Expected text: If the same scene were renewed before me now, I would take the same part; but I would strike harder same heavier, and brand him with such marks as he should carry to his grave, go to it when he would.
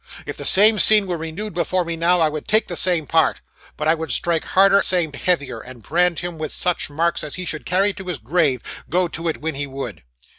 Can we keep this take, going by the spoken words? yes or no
yes